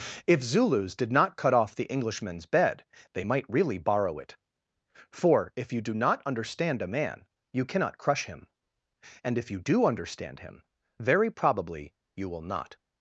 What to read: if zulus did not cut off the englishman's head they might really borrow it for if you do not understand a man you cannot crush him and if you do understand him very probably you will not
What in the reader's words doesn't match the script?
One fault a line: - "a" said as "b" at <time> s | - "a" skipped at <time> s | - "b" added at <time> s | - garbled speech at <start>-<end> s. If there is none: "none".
- "head" said as "bed" at 2.5 s